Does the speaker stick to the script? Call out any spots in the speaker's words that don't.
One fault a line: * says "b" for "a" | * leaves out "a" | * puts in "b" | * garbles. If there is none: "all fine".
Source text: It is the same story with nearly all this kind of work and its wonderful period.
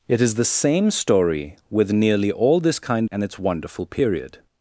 * leaves out "of work"